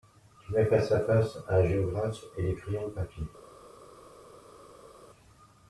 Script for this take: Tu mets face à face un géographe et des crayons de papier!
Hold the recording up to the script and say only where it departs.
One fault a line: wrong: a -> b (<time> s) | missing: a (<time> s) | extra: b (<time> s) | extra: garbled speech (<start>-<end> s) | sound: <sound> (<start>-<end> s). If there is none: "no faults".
no faults